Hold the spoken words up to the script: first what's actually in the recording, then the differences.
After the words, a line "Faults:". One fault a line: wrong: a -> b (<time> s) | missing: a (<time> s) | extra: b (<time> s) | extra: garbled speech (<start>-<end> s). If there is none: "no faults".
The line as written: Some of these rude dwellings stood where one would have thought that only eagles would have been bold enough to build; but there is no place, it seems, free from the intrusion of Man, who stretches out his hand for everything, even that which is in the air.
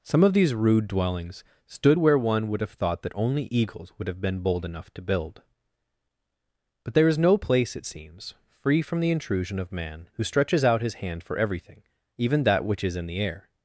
Some of these rude dwellings stood where one would have thought that only eagles would have been bold enough to build; but there is no place, it seems, free from the intrusion of Man, who stretches out his hand for everything, even that which is in the air.
Faults:
no faults